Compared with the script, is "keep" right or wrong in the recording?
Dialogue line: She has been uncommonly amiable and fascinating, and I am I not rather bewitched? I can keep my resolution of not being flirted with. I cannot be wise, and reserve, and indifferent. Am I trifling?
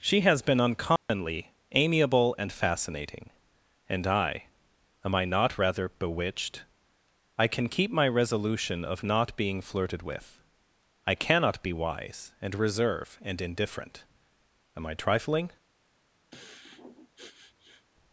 right